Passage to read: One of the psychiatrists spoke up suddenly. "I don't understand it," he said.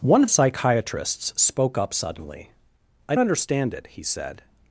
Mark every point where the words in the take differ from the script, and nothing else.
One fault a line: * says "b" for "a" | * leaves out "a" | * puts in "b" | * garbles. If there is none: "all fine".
* leaves out "the"
* leaves out "don't"